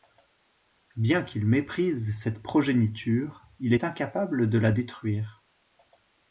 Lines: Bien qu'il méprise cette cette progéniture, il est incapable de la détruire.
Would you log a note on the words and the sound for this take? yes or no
yes